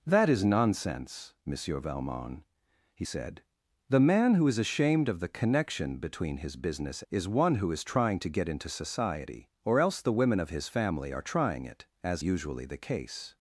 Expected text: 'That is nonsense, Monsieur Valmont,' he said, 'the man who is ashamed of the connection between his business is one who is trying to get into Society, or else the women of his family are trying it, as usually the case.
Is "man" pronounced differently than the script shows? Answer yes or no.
no